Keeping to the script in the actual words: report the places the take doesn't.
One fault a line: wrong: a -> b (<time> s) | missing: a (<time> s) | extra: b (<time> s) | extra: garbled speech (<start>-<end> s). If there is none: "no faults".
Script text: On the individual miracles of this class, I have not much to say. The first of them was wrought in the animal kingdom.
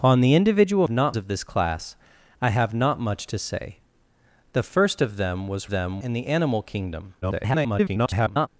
wrong: miracles -> not (0.9 s)
wrong: wrought -> them (5.7 s)
extra: garbled speech (7.2-8.5 s)